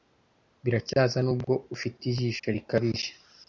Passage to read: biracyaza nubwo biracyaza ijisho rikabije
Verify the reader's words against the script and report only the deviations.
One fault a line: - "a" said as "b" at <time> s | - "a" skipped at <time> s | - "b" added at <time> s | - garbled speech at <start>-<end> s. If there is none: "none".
- "biracyaza" said as "ufite" at 1.8 s